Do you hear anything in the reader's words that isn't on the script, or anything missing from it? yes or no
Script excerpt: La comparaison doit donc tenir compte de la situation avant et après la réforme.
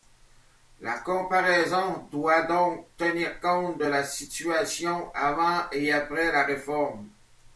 no